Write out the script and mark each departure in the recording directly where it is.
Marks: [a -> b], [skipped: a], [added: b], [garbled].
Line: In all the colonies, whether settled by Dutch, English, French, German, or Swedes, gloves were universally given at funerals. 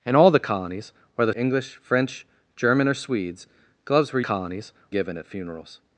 In all the colonies, whether [skipped: settled by Dutch,] English, French, German, or Swedes, gloves were [universally -> colonies] given at funerals.